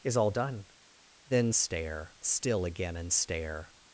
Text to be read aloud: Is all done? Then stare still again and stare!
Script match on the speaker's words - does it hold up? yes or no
yes